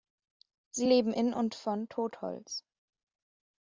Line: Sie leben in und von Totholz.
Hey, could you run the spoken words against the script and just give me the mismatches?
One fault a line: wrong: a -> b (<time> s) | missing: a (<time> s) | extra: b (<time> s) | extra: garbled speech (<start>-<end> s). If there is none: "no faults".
no faults